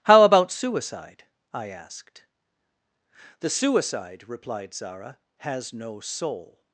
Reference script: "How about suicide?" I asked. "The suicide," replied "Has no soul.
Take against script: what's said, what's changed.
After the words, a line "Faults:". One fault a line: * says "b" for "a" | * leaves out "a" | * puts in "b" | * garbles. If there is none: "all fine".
"How about suicide?" I asked. "The suicide," replied Zara, "has no soul.
Faults:
* puts in "Zara"